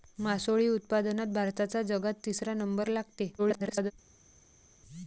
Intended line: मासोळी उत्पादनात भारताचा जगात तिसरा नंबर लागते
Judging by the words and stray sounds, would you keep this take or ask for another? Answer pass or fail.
fail